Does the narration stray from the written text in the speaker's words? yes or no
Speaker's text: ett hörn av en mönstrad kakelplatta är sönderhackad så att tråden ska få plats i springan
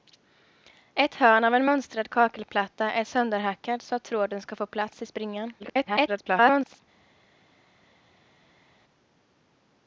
yes